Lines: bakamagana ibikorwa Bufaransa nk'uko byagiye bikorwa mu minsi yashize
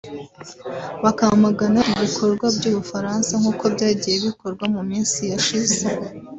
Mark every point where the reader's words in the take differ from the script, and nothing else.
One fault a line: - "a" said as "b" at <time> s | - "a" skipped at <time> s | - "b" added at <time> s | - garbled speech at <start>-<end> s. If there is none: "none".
- "by'u" added at 2.5 s